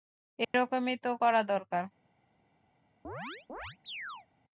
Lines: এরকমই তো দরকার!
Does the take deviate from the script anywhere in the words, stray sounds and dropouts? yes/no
yes